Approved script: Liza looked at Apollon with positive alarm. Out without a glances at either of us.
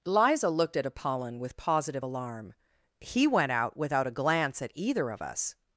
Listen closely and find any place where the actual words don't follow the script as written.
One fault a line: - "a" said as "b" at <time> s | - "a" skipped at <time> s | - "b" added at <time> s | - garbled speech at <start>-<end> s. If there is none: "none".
- "He went" added at 3.0 s
- "glances" said as "glance" at 4.1 s